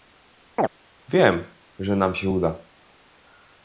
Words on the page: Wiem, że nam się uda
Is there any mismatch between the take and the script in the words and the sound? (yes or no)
yes